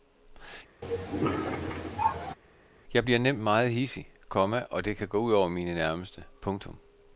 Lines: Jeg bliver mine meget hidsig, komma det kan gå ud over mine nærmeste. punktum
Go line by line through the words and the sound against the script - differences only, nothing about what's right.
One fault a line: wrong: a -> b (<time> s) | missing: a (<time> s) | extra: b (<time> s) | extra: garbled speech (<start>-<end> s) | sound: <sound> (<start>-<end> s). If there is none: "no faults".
sound: cough (0.8-2.4 s)
wrong: mine -> nemt (3.2 s)
extra: og (4.7 s)